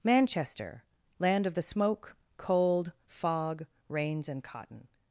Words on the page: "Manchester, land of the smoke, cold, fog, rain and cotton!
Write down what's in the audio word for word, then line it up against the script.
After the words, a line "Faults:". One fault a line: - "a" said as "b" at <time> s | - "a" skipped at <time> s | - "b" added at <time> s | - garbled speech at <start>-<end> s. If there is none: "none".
"Manchester, land of the smoke, cold, fog, rains and cotton!
Faults:
- "rain" said as "rains" at 3.9 s